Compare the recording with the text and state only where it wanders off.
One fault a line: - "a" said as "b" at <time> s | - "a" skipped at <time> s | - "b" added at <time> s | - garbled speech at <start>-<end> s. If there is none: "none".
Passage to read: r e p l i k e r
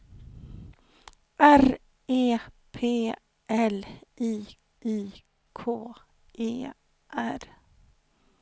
- "i" added at 4.8 s